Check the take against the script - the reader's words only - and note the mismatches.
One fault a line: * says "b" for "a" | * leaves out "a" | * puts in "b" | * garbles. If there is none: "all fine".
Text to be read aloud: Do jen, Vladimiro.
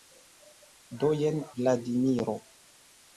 all fine